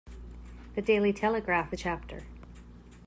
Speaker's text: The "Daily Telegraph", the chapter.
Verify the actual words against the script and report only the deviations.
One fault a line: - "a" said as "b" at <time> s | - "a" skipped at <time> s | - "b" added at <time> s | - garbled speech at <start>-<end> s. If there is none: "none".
none